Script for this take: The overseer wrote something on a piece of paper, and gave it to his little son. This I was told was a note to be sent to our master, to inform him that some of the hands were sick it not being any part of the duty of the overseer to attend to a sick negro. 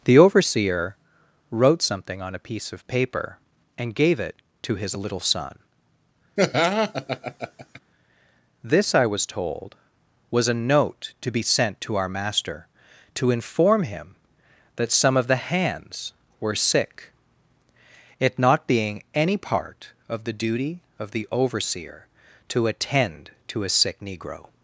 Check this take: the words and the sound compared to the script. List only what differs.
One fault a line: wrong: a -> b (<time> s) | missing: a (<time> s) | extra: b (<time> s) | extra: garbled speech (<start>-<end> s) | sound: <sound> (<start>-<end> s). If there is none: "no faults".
sound: laugh (6.4-7.8 s)